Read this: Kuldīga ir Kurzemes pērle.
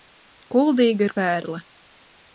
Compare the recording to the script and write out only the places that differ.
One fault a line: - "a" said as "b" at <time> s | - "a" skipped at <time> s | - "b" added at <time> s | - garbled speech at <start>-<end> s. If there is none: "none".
- "Kurzemes" skipped at 1.1 s